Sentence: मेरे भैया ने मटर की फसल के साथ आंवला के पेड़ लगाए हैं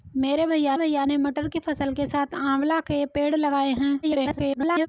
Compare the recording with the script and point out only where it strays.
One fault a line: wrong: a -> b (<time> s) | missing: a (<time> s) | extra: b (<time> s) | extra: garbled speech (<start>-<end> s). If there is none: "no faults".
extra: भैया (0.7 s)
extra: garbled speech (4.0-4.9 s)